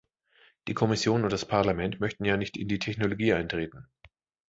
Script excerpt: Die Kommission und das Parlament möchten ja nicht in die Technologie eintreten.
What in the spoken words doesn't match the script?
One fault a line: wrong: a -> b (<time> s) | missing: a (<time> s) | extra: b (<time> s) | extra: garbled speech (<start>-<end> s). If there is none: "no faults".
no faults